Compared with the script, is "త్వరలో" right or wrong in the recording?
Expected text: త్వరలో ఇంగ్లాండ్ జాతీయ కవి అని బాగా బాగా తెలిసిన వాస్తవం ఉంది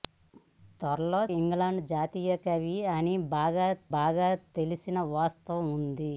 right